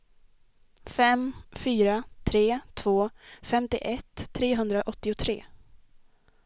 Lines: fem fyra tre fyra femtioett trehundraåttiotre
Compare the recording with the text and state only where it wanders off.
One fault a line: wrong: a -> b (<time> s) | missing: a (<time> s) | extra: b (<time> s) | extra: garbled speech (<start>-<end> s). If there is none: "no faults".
wrong: fyra -> två (2.7 s)